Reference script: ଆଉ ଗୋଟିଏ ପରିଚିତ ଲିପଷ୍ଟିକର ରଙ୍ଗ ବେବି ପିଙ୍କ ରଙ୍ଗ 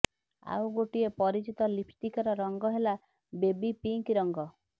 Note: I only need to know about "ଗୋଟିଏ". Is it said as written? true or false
true